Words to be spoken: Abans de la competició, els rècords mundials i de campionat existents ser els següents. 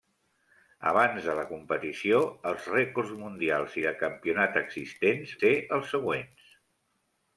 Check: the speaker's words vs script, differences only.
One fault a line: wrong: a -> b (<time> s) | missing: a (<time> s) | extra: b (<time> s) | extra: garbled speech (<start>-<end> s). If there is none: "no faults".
no faults